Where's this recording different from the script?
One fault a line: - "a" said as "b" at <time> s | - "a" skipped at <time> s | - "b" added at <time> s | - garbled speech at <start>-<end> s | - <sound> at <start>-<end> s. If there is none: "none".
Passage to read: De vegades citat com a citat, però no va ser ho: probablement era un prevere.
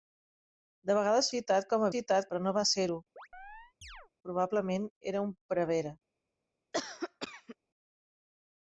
- chirp at 3.2-4.1 s
- cough at 6.7-7.6 s